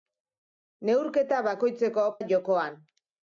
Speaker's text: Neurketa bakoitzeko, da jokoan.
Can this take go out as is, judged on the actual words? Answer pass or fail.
pass